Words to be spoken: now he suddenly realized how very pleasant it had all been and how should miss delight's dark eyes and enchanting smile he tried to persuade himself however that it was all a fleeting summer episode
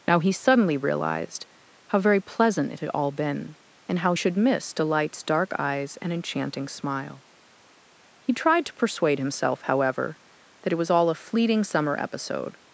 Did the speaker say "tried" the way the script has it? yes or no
yes